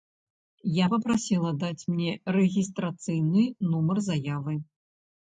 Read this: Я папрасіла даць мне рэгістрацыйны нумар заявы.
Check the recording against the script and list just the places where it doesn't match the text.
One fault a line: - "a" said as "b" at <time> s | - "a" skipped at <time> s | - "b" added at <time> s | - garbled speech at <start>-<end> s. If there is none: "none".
none